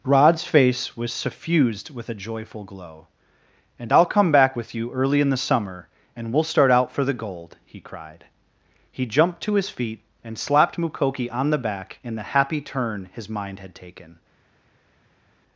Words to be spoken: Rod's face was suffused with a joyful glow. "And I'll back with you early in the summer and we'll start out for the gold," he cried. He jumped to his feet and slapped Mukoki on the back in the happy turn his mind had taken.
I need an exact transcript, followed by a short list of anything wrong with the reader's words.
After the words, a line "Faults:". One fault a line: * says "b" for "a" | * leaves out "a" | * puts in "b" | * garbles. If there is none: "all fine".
Rod's face was suffused with a joyful glow. "And I'll come back with you early in the summer and we'll start out for the gold," he cried. He jumped to his feet and slapped Mukoki on the back in the happy turn his mind had taken.
Faults:
* puts in "come"